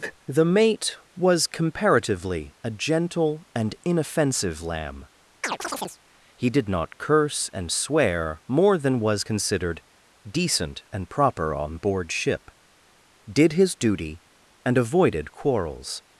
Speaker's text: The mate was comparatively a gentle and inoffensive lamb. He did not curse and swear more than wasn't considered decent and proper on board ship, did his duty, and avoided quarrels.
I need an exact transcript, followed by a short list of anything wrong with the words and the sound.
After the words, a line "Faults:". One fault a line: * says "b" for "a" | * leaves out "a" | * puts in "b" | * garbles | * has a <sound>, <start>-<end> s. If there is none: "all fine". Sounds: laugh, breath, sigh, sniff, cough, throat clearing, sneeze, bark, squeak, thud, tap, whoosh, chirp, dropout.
The mate was comparatively a gentle and inoffensive lamb. He did not curse and swear more than was considered decent and proper on board ship, did his duty, and avoided quarrels.
Faults:
* has a chirp, 5.4-6.0 s
* says "was" for "wasn't"